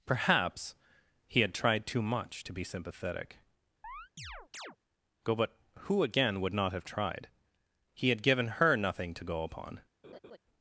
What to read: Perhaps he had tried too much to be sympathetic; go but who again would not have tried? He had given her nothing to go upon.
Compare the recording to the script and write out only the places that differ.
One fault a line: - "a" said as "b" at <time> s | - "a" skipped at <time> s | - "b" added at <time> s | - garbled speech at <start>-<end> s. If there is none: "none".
none